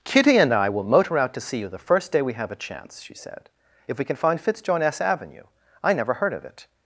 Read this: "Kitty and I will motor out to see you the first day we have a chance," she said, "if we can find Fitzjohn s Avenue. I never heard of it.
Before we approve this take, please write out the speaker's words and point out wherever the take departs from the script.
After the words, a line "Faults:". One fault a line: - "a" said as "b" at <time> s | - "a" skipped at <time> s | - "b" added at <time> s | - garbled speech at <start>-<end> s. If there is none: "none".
"Kitty and I will motor out to see you the first day we have a chance," she said, "if we can find Fitzjohn s Avenue. I never heard of it.
Faults:
none